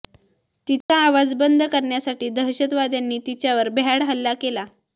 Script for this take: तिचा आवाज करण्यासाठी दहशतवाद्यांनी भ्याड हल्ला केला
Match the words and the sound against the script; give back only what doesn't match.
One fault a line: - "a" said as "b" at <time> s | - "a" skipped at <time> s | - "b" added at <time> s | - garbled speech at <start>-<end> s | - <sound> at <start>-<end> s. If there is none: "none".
- dropout at 0.8-0.9 s
- "बंद" added at 1.4 s
- "तिच्यावर" added at 3.3 s